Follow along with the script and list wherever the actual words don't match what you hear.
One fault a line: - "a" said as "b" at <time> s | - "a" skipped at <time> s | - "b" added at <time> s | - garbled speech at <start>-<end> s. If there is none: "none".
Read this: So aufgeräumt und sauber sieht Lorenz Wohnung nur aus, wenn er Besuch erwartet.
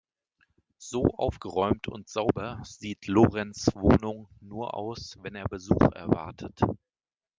none